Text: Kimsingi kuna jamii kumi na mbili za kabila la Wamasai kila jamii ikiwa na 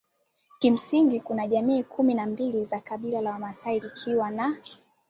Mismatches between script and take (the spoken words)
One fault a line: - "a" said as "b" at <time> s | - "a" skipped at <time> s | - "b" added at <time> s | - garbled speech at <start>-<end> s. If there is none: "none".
- "kila jamii" skipped at 3.8 s